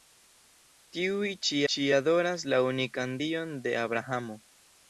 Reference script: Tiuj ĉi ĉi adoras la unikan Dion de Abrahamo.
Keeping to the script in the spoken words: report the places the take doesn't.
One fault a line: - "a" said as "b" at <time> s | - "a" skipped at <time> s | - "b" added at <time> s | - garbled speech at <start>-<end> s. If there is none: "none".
none